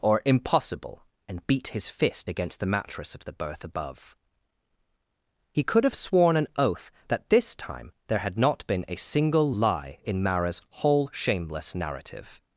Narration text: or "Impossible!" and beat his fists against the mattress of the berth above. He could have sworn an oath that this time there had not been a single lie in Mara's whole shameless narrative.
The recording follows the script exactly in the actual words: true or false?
false